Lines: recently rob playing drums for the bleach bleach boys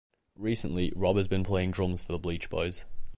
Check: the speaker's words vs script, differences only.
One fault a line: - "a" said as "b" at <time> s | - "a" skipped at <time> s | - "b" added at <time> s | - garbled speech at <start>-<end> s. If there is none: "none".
- "has been" added at 1.2 s
- "bleach" skipped at 2.5 s